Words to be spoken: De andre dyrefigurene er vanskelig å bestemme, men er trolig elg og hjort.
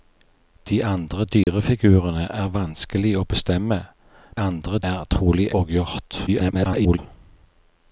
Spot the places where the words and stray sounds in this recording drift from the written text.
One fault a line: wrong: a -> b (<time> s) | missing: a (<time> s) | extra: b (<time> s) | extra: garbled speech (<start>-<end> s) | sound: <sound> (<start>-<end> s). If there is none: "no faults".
sound: dropout (1.4-1.5 s)
wrong: men -> andre (4.4 s)
missing: elg (5.5 s)
extra: garbled speech (6.3-7.0 s)